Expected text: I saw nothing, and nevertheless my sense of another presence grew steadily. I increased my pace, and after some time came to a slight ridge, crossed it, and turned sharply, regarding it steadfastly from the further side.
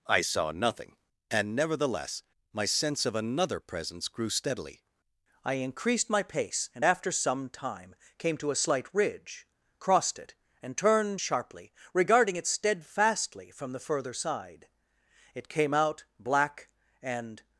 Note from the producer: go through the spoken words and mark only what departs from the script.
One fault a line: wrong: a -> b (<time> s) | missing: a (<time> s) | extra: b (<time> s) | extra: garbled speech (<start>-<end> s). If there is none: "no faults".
extra: It came out black and (15.3 s)